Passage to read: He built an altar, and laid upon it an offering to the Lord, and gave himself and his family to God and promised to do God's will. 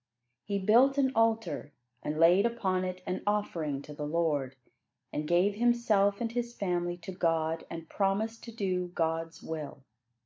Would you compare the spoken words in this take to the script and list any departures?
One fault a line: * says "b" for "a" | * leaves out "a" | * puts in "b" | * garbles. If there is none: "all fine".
all fine